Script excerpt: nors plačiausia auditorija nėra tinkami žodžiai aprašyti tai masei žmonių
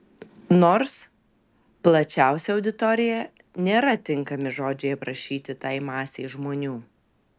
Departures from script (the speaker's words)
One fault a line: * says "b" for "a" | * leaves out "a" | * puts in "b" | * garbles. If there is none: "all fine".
all fine